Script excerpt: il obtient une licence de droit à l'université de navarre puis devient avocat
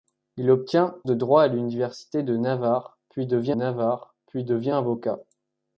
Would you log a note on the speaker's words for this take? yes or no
yes